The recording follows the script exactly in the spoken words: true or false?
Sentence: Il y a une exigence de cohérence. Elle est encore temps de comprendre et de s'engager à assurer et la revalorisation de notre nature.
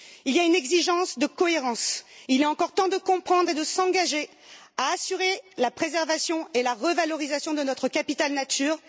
false